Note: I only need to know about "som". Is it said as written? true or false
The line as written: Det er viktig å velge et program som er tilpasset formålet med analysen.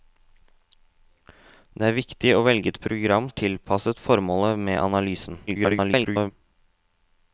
false